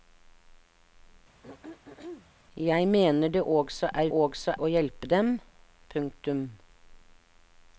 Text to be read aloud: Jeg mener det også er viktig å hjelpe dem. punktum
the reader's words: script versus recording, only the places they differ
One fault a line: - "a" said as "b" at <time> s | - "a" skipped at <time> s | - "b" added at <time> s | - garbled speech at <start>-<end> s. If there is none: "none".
- "viktig" said as "også" at 4.1 s